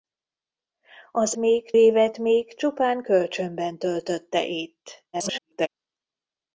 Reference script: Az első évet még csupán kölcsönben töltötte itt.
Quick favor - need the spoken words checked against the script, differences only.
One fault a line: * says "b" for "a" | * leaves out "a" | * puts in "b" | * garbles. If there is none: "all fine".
* says "még" for "első"
* garbles